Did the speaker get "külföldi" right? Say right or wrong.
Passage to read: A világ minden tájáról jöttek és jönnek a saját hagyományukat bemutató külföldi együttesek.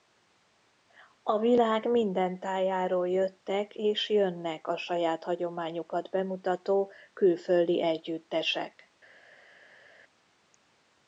right